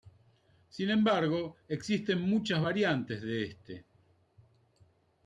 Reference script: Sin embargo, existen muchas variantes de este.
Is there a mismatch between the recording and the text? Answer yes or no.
no